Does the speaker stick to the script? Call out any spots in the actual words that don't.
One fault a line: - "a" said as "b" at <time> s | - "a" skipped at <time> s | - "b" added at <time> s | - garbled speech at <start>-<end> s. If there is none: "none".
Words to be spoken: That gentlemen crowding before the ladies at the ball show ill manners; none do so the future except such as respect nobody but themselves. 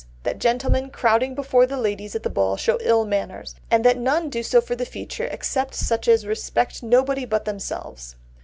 - "and that" added at 3.7 s
- "for" added at 4.6 s